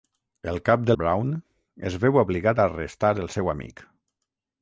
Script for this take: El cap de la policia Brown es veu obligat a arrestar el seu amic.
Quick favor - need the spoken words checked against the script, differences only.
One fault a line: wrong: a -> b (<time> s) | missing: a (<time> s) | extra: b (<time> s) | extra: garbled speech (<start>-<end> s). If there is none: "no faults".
missing: la policia (0.9 s)